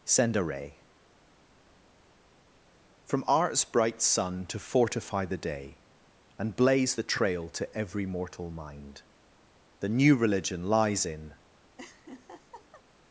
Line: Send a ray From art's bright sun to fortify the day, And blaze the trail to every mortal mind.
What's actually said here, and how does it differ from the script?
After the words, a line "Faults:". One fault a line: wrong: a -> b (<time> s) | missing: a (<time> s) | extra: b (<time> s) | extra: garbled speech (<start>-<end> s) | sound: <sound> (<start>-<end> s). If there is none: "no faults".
Send a ray From art's bright sun to fortify the day, And blaze the trail to every mortal mind. The new religion lies in
Faults:
extra: The new religion lies in (9.8 s)
sound: laugh (11.8-12.8 s)